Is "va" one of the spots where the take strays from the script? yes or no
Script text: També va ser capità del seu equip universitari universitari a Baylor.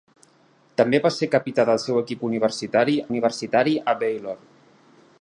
no